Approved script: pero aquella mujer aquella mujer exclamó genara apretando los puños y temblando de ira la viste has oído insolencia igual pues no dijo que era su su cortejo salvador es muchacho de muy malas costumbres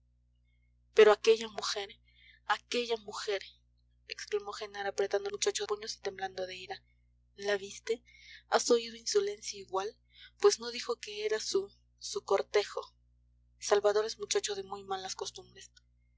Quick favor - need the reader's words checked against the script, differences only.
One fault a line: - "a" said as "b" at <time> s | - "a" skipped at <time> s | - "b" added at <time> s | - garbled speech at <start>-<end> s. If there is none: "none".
- "los" said as "muchacho" at 5.3 s